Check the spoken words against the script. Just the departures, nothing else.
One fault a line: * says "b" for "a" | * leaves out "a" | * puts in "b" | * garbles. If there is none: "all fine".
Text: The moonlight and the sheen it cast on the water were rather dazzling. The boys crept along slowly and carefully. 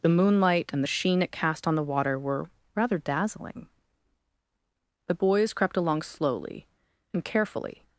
all fine